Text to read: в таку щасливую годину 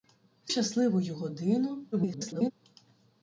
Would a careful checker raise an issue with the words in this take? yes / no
yes